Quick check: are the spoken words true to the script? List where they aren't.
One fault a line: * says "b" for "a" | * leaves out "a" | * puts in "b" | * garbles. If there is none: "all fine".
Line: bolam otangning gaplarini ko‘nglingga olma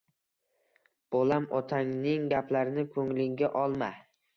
all fine